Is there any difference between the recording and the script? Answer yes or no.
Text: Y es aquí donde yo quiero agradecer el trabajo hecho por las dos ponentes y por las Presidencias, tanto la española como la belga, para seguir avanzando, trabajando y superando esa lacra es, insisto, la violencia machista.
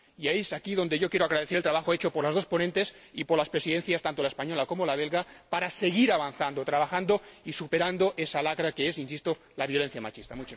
yes